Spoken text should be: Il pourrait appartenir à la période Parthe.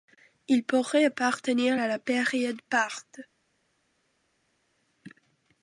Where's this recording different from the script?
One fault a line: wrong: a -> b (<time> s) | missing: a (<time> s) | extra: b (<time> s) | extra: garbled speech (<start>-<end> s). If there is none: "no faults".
no faults